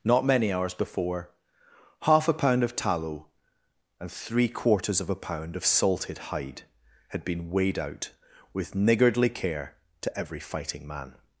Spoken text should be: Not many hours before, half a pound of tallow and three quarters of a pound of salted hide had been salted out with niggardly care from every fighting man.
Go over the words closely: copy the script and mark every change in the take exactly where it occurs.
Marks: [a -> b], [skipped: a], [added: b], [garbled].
Not many hours before, half a pound of tallow and three quarters of a pound of salted hide had been [salted -> weighed] out with niggardly care [from -> to] every fighting man.